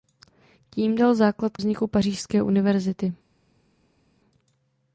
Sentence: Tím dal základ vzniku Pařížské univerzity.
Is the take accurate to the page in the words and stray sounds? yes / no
yes